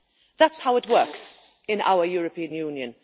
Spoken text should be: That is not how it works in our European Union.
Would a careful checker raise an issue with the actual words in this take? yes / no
yes